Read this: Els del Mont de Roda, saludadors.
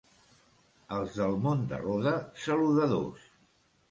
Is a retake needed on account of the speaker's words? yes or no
no